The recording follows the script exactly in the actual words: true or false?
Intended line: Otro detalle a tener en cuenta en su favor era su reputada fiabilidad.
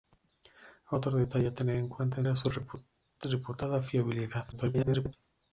false